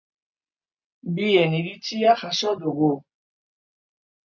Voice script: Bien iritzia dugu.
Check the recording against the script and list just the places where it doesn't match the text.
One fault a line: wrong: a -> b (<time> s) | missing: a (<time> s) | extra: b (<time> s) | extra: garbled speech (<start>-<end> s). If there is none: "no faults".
extra: jaso (2.2 s)